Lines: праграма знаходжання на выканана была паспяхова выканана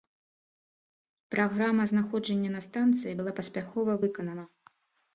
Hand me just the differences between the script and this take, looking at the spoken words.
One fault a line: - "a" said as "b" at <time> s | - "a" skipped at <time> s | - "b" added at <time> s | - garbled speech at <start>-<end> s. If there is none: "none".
- "выканана" said as "станцыі" at 2.7 s